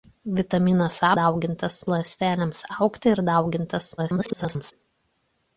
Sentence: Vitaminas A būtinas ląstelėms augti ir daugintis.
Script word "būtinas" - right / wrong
wrong